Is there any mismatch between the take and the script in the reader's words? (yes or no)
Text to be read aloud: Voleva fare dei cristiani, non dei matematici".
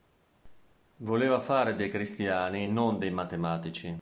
no